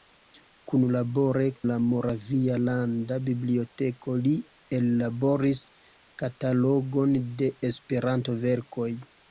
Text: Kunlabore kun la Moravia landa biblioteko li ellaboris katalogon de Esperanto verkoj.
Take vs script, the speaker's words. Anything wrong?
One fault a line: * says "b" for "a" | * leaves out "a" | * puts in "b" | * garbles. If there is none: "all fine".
* leaves out "kun"